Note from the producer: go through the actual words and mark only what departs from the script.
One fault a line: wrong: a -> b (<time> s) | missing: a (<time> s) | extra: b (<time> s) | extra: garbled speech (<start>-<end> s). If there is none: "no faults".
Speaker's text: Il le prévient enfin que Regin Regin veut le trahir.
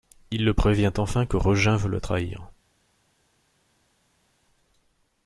missing: Regin (1.8 s)